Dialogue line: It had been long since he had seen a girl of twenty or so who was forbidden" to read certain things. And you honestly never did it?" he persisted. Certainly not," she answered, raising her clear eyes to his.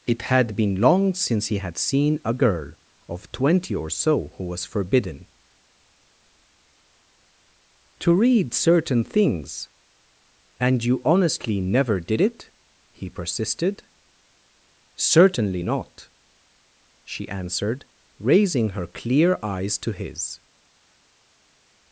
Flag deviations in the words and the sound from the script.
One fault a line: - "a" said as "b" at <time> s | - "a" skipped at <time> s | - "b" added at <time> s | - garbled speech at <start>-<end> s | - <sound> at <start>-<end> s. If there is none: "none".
none